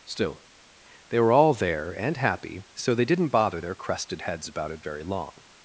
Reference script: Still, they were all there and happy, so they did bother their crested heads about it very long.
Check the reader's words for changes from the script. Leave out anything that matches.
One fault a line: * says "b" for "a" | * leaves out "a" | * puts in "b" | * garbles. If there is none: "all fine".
* says "didn't" for "did"